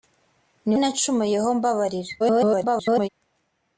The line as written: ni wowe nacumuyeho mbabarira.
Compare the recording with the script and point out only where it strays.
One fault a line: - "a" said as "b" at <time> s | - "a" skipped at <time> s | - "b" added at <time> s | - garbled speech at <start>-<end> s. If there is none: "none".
- "wowe" skipped at 0.8 s
- garbled speech at 2.2-3.1 s